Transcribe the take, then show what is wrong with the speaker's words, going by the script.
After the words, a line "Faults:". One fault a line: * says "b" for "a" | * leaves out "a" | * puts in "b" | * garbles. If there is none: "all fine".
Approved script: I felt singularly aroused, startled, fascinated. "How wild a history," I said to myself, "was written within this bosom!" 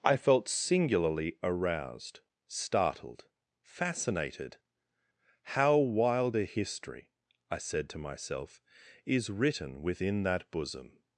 I felt singularly aroused, startled, fascinated. "How wild a history," I said to myself, "is written within that bosom!"
Faults:
* says "is" for "was"
* says "that" for "this"